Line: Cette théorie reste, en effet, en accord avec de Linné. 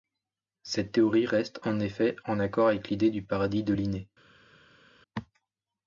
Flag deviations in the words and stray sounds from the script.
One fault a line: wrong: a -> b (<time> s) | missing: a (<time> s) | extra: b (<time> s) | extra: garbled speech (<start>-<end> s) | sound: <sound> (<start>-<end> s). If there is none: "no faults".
extra: l'idée du Paradis (2.9 s)